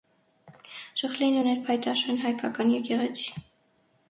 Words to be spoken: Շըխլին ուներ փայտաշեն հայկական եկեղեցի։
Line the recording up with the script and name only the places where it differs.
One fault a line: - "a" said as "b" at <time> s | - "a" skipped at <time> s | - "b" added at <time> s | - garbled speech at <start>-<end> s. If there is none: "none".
none